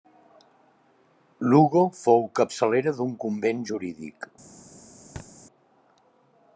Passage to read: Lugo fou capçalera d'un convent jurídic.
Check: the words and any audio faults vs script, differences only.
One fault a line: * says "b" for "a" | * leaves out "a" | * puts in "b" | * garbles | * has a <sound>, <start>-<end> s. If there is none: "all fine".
* has a thud, 5.2-5.3 s